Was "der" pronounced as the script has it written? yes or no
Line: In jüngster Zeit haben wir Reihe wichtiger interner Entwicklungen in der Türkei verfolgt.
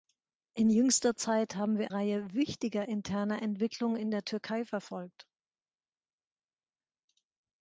yes